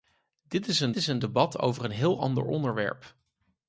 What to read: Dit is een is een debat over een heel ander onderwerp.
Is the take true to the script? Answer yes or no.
yes